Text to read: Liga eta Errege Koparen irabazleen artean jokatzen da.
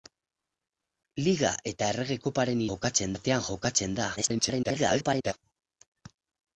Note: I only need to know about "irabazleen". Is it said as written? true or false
false